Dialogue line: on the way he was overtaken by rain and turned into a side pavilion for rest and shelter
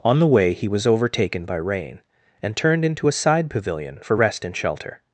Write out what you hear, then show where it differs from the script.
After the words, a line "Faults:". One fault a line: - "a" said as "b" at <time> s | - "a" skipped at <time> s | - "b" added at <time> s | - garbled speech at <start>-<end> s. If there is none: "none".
on the way he was overtaken by rain and turned into a side pavilion for rest and shelter
Faults:
none